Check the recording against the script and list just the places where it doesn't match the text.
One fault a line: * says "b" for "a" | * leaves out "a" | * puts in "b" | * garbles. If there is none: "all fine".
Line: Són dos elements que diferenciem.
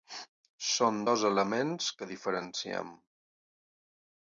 all fine